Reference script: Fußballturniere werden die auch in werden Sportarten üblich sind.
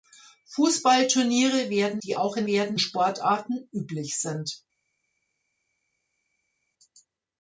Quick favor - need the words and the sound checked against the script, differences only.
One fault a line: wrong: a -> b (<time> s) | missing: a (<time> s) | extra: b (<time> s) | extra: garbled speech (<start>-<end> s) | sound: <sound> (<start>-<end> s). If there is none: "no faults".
no faults